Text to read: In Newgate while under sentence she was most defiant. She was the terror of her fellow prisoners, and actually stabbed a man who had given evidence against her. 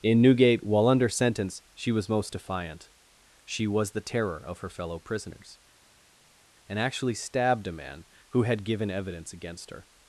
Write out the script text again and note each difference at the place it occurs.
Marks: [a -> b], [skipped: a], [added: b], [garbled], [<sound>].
In Newgate while under sentence she was most defiant. She was the terror of her fellow prisoners, and actually stabbed a man who had given evidence against her.